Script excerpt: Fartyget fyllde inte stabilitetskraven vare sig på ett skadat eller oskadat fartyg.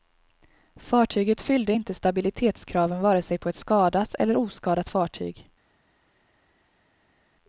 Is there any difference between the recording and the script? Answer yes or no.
no